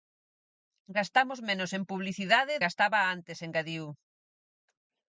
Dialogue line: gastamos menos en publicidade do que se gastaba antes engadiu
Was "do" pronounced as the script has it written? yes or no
no